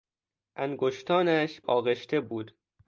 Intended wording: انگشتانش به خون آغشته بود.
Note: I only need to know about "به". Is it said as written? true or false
false